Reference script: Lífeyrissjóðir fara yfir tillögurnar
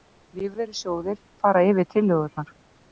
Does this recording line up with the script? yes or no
yes